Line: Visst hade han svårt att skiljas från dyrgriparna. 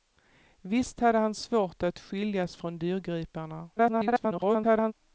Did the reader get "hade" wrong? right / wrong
right